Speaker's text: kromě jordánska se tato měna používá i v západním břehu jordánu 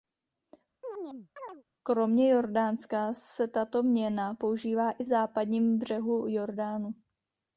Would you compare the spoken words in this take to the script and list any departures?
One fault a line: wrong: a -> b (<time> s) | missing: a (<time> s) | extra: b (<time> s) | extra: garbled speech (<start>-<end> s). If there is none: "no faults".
no faults